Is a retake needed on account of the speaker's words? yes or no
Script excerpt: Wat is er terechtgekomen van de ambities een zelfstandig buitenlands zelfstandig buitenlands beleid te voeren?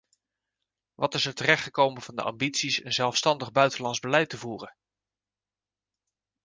yes